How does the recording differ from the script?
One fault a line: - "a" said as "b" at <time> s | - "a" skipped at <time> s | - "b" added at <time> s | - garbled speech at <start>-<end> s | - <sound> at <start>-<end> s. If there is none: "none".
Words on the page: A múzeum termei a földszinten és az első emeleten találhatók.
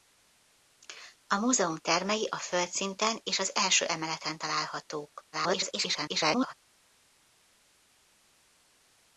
- garbled speech at 5.3-6.5 s